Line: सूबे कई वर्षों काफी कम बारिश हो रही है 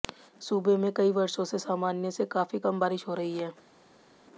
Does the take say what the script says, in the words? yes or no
no